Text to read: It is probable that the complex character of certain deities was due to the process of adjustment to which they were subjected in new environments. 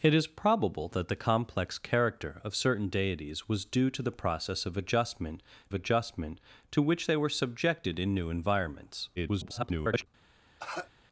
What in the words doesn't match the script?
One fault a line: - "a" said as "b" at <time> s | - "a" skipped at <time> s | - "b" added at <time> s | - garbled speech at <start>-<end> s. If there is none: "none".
- "adjustment" added at 5.7 s
- garbled speech at 9.2-10.1 s